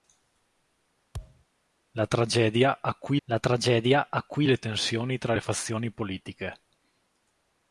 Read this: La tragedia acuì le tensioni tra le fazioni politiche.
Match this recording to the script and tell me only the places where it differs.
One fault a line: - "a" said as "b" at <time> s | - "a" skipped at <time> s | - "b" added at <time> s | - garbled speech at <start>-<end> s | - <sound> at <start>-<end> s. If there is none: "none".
- thud at 1.1-1.4 s
- "la tragedia acuì" added at 3.2 s